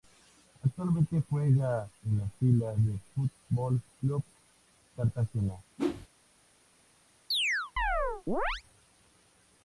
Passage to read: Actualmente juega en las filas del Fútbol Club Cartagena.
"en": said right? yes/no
yes